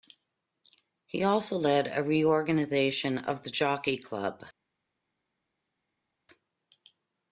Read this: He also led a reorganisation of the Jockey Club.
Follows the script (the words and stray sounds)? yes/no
yes